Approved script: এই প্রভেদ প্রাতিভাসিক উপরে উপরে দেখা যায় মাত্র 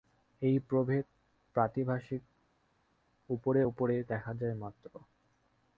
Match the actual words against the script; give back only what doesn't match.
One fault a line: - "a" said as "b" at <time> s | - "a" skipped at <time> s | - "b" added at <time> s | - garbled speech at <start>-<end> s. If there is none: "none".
none